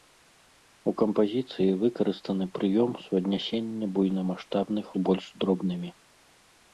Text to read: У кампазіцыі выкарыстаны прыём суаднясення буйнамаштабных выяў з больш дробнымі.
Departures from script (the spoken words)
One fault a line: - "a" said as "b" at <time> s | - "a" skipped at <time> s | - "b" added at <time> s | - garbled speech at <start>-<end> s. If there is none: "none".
- "выяў" skipped at 4.8 s